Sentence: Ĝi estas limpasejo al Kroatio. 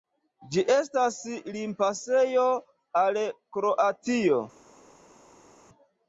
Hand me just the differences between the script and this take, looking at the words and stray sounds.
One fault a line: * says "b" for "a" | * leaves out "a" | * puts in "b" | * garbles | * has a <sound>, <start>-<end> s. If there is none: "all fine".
all fine